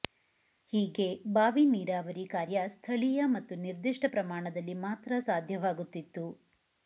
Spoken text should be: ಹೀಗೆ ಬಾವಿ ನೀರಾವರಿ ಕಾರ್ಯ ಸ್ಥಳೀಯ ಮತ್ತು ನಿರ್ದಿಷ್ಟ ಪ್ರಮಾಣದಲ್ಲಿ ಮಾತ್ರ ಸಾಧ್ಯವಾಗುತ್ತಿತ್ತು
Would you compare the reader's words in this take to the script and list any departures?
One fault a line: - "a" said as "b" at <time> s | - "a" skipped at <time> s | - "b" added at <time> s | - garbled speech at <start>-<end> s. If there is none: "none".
none